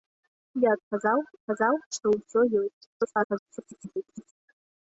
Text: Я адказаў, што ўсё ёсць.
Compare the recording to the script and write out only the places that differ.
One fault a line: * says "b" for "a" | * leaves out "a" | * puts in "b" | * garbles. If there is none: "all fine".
* puts in "адказаў"
* garbles